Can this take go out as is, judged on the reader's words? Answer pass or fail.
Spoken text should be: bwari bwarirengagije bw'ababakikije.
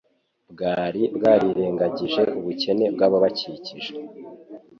fail